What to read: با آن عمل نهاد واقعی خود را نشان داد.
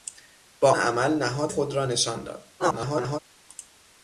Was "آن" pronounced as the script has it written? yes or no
no